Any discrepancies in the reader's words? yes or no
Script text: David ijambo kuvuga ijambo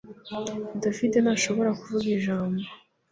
yes